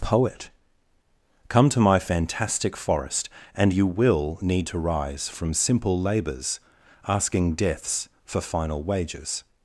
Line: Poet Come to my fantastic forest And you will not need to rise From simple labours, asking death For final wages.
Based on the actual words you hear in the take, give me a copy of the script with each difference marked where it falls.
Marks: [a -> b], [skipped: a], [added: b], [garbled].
Poet Come to my fantastic forest And you will [skipped: not] need to rise From simple labours, asking [death -> deaths] For final wages.